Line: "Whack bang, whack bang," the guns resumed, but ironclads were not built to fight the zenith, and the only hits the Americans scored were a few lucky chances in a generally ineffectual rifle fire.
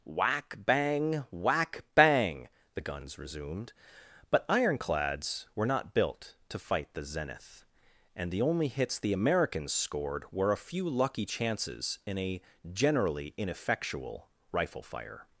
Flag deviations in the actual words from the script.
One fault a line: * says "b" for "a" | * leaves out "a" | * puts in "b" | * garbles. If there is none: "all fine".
all fine